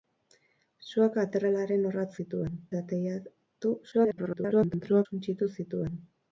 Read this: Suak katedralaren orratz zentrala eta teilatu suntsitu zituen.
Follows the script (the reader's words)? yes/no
no